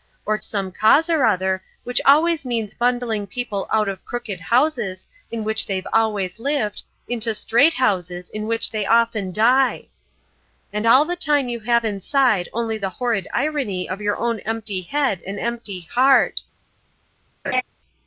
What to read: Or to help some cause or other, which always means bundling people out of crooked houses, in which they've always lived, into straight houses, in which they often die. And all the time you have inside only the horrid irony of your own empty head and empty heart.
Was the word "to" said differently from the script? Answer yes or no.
yes